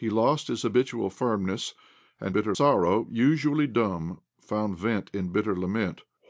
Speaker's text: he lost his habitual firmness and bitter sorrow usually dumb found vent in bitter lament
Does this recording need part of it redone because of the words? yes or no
no